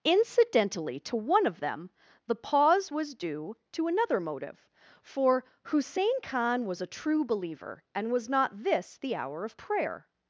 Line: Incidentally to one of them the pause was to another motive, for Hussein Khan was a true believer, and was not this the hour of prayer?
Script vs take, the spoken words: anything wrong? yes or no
yes